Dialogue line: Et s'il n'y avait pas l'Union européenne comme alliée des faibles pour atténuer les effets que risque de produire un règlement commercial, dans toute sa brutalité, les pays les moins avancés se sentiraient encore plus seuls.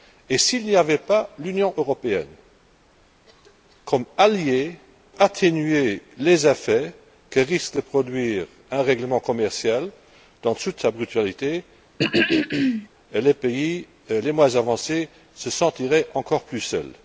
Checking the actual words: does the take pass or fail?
fail